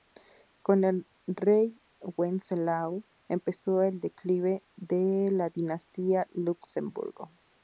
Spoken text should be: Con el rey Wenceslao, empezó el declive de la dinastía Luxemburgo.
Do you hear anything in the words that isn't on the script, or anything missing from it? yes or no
no